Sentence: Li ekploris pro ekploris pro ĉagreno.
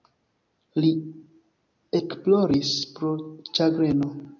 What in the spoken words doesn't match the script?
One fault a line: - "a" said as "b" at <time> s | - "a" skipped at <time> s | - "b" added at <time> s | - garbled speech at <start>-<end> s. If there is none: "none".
- "ekploris pro" skipped at 3.2 s